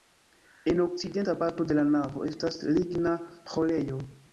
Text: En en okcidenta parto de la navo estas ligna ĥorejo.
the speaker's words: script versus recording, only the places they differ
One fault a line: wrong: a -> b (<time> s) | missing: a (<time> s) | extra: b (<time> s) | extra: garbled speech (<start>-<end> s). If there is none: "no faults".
missing: en (0.8 s)